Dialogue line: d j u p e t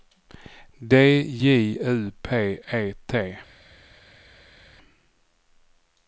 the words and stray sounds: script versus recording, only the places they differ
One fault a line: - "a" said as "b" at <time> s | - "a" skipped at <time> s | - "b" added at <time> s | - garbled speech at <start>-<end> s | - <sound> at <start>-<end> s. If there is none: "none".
none